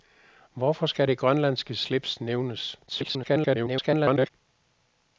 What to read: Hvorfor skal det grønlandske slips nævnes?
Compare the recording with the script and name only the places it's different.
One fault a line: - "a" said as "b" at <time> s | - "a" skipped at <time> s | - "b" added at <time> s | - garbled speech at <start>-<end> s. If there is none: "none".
- garbled speech at 2.9-4.3 s